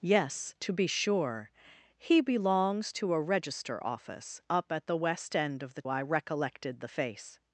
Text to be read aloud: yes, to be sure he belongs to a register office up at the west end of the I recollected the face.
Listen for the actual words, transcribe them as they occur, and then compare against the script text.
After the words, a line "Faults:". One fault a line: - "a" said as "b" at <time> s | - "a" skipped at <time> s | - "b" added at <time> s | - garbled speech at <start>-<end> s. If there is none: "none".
yes, to be sure he belongs to a register office up at the west end of the I recollected the face.
Faults:
none